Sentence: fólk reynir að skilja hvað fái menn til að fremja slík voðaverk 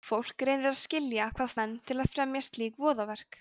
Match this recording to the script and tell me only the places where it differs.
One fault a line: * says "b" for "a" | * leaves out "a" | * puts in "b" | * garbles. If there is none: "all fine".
* leaves out "fái"